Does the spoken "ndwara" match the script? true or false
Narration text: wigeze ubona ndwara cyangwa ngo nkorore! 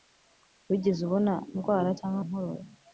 true